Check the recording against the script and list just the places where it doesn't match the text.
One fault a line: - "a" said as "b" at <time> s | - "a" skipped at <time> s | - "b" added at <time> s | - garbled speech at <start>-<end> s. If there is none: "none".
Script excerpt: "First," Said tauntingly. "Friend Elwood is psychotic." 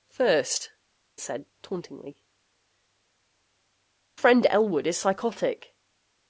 none